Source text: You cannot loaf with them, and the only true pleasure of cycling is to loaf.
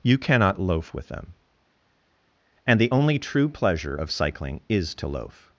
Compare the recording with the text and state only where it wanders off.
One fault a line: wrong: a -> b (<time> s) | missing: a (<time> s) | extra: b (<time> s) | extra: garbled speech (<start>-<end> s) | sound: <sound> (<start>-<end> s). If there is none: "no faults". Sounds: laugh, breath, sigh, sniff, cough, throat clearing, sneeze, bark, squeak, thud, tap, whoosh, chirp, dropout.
no faults